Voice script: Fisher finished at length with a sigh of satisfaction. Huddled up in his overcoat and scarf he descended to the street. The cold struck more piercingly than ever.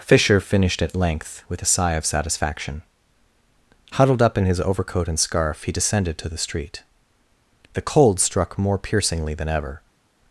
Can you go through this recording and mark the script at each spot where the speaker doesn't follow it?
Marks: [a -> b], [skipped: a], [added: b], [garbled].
Fisher finished at length with a sigh of satisfaction. Huddled up in his overcoat and scarf he descended to the street. The cold struck more piercingly than ever.